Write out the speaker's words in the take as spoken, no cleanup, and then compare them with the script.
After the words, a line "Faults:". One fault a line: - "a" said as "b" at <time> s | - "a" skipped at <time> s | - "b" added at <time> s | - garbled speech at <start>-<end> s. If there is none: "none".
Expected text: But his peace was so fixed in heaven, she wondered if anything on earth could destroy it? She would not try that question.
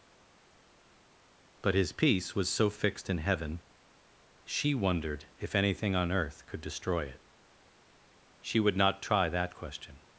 But his peace was so fixed in heaven, she wondered if anything on earth could destroy it? She would not try that question.
Faults:
none